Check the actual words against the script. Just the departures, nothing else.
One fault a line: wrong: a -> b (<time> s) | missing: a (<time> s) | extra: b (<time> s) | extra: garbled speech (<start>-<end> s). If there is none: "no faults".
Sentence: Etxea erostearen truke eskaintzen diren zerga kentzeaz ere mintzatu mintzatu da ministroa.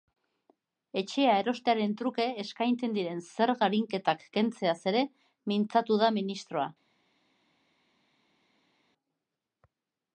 extra: arinketak (3.7 s)
missing: mintzatu (6.0 s)